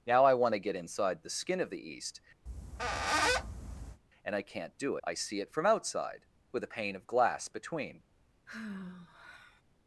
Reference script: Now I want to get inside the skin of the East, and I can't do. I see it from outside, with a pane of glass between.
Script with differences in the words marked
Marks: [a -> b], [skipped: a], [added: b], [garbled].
Now I want to get inside the skin of the East, and I can't do. I see it from outside, with a pane of glass between.